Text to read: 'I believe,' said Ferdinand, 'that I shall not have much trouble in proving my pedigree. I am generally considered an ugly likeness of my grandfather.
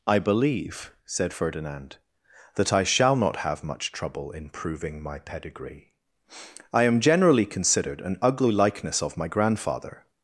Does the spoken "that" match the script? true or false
true